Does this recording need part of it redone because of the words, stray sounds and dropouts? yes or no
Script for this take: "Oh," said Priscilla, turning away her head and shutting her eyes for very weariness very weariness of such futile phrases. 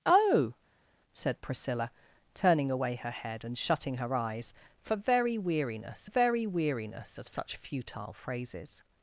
no